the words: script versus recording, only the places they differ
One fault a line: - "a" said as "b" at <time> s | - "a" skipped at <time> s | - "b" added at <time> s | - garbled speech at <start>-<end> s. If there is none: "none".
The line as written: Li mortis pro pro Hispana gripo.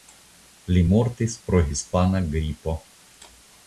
- "pro" skipped at 1.6 s